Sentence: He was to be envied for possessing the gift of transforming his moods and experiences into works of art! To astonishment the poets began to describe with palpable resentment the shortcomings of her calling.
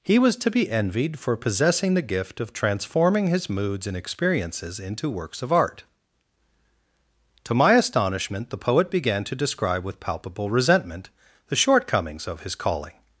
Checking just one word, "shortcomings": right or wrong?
right